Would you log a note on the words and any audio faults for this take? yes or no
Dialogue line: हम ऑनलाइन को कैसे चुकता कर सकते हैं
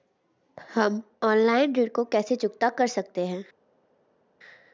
yes